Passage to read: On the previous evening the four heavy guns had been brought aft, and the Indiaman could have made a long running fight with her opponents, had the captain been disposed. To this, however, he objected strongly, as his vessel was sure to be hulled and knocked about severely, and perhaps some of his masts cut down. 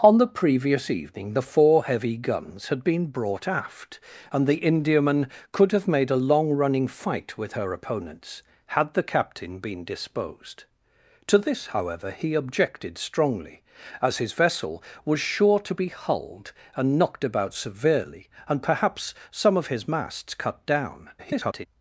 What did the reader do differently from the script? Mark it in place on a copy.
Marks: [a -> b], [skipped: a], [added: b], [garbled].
On the previous evening the four heavy guns had been brought aft, and the Indiaman could have made a long running fight with her opponents, had the captain been disposed. To this, however, he objected strongly, as his vessel was sure to be hulled and knocked about severely, and perhaps some of his masts cut down. [garbled]